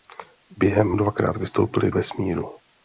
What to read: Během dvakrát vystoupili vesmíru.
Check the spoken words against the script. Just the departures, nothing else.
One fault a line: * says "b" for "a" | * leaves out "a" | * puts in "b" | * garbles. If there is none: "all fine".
all fine